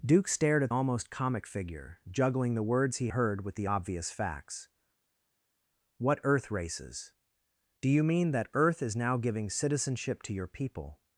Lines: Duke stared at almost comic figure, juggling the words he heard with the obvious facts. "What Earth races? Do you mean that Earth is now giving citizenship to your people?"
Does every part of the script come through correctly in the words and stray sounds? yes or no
yes